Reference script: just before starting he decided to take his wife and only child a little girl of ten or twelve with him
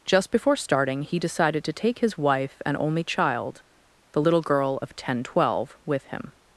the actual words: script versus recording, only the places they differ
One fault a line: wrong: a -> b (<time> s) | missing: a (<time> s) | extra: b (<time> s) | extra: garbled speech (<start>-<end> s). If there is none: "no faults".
wrong: a -> the (4.1 s)
missing: or (5.2 s)